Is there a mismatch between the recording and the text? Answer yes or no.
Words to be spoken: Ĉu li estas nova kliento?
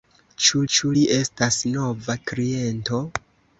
yes